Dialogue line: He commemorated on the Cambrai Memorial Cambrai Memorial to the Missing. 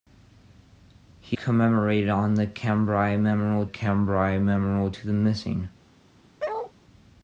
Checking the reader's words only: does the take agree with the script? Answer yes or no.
yes